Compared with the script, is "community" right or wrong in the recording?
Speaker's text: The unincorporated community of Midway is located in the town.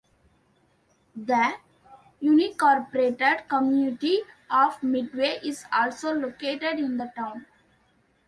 right